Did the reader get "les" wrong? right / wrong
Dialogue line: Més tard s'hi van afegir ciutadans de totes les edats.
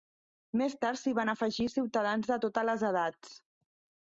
right